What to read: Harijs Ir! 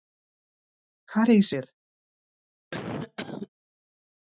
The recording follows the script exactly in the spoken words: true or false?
true